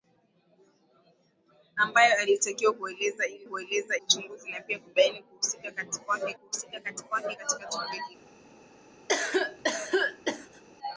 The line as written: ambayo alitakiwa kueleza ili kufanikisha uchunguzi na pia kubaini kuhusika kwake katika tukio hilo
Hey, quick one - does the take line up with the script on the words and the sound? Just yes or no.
no